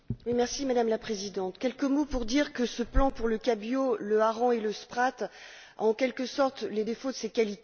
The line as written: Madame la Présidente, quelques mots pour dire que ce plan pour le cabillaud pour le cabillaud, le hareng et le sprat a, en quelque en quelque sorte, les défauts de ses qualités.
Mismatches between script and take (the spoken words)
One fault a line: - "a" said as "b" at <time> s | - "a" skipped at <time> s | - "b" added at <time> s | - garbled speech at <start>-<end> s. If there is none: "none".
- "pour" skipped at 4.0 s
- "cabillaud le" skipped at 4.2 s
- "en quelque" skipped at 6.2 s